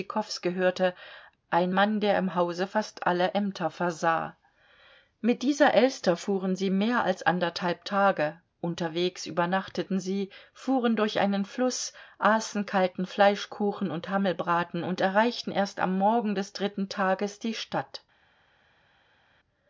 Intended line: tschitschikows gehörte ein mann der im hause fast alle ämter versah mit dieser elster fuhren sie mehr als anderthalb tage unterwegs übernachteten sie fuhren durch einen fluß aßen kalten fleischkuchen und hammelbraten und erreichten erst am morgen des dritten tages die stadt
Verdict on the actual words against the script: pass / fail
pass